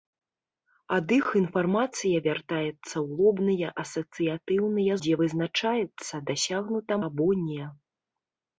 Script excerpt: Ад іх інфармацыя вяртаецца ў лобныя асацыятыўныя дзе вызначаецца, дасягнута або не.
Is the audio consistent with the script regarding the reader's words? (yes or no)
yes